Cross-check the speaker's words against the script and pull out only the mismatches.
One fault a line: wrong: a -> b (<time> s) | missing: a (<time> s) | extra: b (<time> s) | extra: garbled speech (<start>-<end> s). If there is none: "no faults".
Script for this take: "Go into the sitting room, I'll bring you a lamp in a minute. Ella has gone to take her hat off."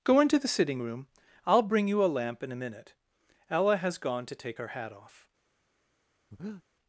no faults